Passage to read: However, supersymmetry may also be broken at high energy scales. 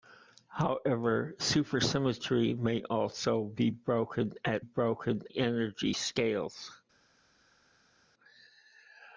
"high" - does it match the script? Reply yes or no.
no